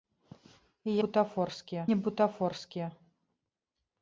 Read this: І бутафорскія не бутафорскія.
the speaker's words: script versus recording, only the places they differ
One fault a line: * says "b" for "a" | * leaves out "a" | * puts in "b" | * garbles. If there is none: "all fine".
all fine